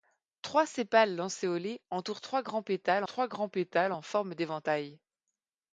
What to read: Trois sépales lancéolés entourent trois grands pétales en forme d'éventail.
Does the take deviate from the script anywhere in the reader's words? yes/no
yes